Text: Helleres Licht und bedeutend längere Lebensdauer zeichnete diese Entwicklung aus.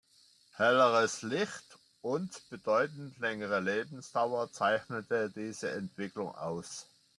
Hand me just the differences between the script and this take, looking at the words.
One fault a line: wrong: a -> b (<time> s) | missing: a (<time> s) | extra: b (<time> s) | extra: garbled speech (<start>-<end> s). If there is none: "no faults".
no faults